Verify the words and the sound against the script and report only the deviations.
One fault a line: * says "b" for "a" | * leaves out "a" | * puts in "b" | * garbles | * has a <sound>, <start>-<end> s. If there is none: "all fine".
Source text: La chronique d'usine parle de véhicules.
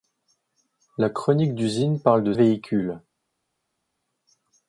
all fine